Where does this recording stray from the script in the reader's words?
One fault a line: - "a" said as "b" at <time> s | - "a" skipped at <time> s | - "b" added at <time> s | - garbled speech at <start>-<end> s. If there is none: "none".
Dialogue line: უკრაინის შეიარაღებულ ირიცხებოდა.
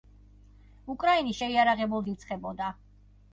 none